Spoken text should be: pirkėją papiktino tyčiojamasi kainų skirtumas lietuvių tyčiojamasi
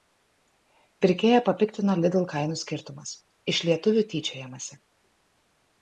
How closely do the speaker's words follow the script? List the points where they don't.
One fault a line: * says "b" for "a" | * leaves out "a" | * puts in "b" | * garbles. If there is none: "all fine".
* says "lidl" for "tyčiojamasi"
* puts in "iš"